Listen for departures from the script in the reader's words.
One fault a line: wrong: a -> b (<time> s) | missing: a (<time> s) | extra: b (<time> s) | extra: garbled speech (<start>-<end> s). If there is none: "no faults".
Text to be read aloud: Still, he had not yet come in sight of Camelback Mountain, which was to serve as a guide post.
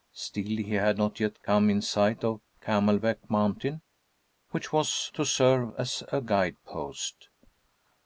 no faults